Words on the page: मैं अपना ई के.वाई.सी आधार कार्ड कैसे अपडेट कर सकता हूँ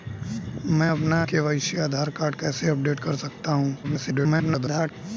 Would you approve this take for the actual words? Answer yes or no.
no